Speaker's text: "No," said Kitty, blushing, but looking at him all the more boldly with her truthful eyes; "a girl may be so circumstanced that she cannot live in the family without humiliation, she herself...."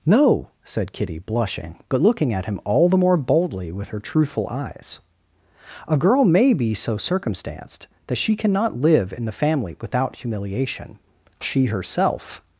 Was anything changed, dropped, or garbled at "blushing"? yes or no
no